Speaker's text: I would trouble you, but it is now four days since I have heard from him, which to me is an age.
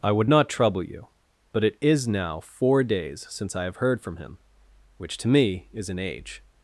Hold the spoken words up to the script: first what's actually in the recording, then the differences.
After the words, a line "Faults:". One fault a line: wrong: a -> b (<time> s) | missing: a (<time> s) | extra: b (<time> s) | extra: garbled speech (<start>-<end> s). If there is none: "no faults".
I would not trouble you, but it is now four days since I have heard from him, which to me is an age.
Faults:
extra: not (0.3 s)